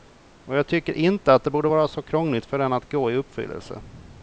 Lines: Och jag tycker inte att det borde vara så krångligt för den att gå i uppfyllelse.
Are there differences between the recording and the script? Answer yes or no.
no